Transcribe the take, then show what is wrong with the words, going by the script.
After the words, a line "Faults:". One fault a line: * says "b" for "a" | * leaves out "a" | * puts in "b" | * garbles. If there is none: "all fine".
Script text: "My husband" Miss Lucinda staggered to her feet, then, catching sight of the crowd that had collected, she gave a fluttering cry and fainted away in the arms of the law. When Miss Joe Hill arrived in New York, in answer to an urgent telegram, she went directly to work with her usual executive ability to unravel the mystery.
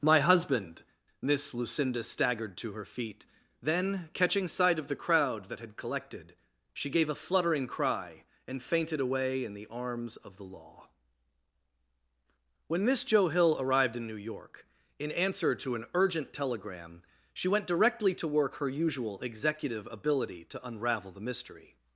"My husband" Miss Lucinda staggered to her feet, then, catching sight of the crowd that had collected, she gave a fluttering cry and fainted away in the arms of the law. When Miss Joe Hill arrived in New York, in answer to an urgent telegram, she went directly to work her usual executive ability to unravel the mystery.
Faults:
* leaves out "with"